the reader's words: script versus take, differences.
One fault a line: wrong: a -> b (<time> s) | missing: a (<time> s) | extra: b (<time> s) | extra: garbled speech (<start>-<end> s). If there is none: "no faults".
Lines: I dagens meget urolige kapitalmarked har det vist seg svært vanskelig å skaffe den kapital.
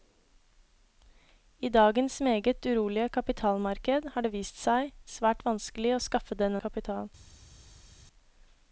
no faults